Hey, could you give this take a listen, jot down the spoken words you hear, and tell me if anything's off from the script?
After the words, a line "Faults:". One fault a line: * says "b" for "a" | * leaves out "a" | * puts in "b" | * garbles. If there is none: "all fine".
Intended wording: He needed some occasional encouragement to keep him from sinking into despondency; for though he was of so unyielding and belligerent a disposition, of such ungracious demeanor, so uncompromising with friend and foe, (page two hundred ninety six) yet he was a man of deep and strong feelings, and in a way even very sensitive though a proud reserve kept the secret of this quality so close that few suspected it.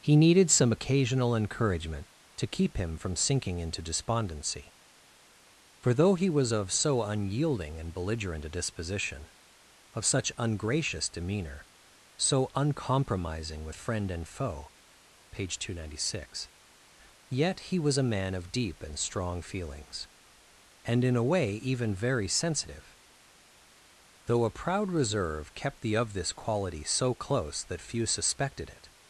He needed some occasional encouragement to keep him from sinking into despondency; for though he was of so unyielding and belligerent a disposition, of such ungracious demeanor, so uncompromising with friend and foe, (page two hundred ninety six) yet he was a man of deep and strong feelings, and in a way even very sensitive though a proud reserve kept the of this quality so close that few suspected it.
Faults:
* leaves out "secret"